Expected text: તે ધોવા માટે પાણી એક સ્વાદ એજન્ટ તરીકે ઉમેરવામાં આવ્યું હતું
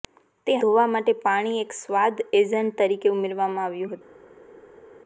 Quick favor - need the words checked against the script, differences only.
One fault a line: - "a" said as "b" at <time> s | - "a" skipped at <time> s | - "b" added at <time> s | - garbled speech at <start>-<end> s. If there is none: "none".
none